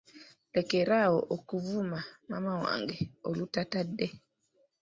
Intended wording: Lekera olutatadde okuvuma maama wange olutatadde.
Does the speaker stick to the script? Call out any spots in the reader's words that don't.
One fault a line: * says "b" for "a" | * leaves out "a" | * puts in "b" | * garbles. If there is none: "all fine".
* says "awo" for "olutatadde"